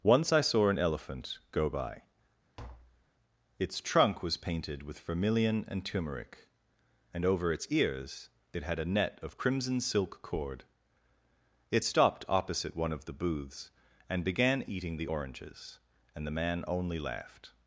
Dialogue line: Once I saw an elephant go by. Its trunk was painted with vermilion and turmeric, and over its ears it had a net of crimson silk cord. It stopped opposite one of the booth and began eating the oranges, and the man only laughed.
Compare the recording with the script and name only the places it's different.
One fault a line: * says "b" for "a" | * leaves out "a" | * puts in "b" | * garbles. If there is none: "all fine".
* says "booths" for "booth"